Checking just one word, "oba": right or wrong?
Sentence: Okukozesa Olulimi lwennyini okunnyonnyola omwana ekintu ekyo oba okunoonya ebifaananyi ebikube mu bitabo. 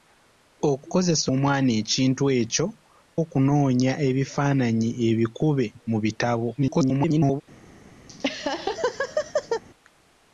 wrong